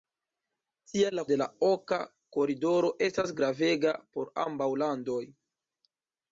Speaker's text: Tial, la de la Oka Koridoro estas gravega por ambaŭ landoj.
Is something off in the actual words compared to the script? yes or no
no